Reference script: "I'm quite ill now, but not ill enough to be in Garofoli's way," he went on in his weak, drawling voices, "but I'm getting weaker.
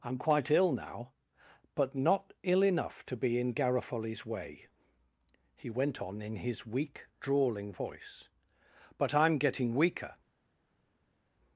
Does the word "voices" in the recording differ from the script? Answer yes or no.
yes